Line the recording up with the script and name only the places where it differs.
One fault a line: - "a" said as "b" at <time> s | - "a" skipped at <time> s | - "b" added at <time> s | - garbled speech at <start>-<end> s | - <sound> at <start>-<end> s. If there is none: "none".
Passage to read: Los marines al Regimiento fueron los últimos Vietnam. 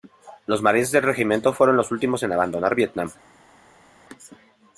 - "al" said as "del" at 0.9 s
- "en abandonar" added at 2.2 s